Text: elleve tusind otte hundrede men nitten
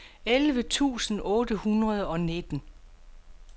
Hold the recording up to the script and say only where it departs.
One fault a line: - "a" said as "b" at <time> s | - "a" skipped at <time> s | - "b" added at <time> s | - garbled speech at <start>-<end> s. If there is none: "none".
- "men" said as "og" at 2.1 s